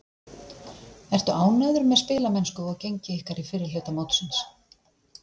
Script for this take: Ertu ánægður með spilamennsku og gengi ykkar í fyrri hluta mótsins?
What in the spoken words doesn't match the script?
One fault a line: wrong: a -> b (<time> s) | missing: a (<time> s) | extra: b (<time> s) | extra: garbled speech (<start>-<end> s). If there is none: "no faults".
no faults